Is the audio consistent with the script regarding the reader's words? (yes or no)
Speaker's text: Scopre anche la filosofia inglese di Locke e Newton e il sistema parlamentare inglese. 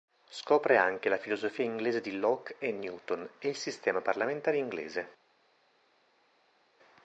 yes